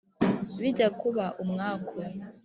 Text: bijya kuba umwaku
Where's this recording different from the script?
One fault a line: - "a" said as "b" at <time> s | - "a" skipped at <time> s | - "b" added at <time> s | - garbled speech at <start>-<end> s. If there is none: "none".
none